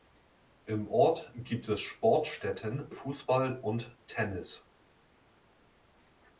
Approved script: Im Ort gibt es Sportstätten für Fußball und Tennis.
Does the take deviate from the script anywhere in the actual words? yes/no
yes